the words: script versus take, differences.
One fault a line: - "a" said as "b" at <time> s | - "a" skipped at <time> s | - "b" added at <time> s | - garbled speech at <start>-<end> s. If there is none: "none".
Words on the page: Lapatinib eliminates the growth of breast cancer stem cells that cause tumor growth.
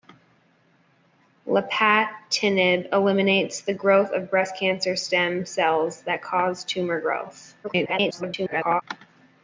- garbled speech at 7.6-8.8 s